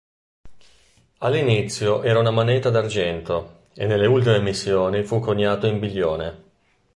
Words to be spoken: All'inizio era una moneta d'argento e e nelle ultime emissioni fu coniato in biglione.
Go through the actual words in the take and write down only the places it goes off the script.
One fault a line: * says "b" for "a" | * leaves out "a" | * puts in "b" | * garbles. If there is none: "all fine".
* leaves out "e"